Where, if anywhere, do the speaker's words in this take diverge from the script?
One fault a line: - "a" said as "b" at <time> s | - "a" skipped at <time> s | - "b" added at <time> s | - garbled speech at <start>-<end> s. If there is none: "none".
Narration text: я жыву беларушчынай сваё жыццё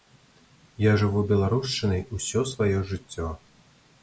- "усё" added at 2.2 s